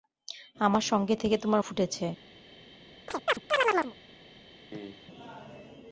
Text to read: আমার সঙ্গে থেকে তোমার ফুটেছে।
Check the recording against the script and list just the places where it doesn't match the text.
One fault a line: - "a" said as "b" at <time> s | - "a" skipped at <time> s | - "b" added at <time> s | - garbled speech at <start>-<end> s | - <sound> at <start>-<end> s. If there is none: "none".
- chirp at 3.1-3.9 s
- cough at 4.7-5.1 s